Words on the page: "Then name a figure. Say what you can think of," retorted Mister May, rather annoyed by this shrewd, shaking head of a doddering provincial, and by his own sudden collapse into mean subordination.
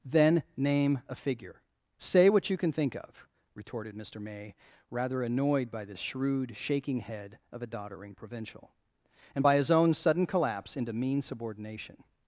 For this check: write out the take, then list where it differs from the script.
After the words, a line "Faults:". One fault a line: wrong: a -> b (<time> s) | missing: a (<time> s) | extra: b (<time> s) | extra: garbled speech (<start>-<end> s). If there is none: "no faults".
"Then name a figure. Say what you can think of," retorted Mister May, rather annoyed by this shrewd, shaking head of a doddering provincial, and by his own sudden collapse into mean subordination.
Faults:
no faults